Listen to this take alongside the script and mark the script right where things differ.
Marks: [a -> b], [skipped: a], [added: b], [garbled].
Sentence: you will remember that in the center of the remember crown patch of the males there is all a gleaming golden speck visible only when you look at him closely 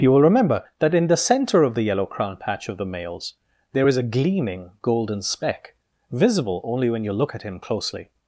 you will remember that in the center of the [remember -> yellow] crown patch of the males there is [skipped: all] a gleaming golden speck visible only when you look at him closely